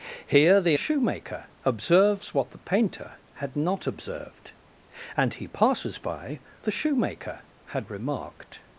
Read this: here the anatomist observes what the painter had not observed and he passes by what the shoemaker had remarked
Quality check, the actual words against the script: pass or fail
fail